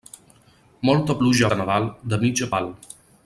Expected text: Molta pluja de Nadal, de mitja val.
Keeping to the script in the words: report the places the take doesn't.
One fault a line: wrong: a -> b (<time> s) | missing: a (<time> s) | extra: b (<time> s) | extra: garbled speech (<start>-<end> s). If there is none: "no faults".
no faults